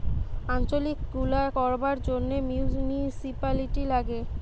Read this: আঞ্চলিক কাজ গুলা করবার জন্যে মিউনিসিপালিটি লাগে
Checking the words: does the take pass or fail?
fail